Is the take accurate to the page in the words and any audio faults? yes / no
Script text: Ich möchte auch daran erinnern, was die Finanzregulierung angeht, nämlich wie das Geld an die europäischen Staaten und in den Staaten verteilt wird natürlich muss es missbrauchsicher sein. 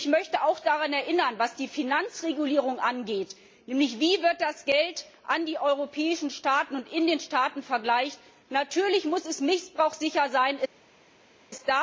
yes